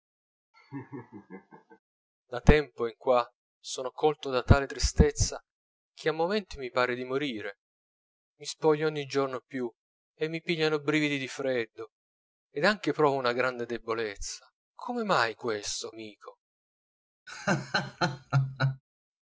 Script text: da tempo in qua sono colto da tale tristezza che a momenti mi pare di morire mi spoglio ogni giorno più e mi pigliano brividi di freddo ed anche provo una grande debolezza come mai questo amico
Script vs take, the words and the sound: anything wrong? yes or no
yes